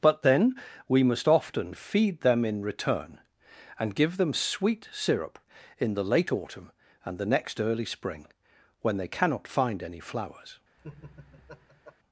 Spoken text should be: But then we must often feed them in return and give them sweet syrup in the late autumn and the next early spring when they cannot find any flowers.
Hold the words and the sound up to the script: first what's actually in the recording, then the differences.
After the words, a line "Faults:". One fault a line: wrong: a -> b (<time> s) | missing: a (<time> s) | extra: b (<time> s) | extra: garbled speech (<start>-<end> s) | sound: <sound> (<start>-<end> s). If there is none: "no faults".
But then we must often feed them in return and give them sweet syrup in the late autumn and the next early spring when they cannot find any flowers.
Faults:
sound: laugh (10.8-12.0 s)